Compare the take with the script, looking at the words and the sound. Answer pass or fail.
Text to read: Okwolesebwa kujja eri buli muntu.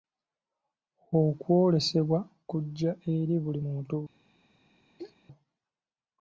fail